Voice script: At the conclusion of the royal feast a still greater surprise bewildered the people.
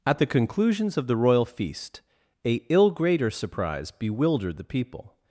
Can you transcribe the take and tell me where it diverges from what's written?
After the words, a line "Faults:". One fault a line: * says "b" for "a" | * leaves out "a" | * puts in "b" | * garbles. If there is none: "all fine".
At the conclusions of the royal feast a ill greater surprise bewildered the people.
Faults:
* says "conclusions" for "conclusion"
* says "ill" for "still"